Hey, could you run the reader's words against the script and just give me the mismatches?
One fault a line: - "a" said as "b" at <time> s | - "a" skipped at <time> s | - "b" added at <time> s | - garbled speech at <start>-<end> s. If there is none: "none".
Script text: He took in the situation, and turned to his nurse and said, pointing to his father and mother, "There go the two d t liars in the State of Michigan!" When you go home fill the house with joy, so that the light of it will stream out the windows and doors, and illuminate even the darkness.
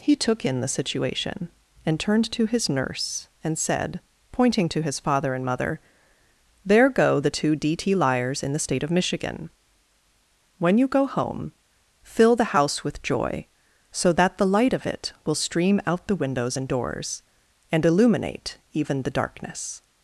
none